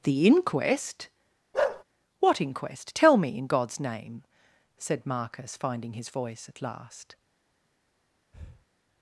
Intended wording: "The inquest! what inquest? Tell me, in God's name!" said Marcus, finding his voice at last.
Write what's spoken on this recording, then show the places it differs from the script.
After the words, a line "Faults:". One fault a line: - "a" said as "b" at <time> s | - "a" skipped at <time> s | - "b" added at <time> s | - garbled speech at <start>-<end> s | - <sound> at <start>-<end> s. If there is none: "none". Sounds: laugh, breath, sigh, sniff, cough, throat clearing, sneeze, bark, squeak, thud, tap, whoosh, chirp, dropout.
"The inquest! what inquest? Tell me, in God's name!" said Marcus, finding his voice at last.
Faults:
- bark at 1.5-1.8 s
- breath at 8.3-8.7 s